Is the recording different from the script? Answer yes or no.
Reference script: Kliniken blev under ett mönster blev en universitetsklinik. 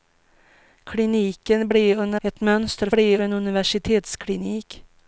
no